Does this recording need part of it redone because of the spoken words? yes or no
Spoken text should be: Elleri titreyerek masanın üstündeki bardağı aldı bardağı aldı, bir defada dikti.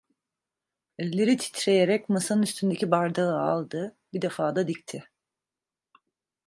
yes